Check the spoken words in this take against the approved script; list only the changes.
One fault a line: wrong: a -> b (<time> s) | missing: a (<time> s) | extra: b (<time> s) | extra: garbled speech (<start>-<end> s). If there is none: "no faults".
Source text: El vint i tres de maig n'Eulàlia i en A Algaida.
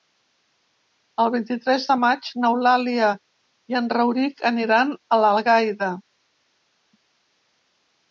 extra: Rauric aniran (4.0 s)